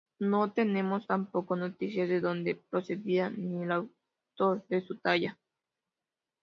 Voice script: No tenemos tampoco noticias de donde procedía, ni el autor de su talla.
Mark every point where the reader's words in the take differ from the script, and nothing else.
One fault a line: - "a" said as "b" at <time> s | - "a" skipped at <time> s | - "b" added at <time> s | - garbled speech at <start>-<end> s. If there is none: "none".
none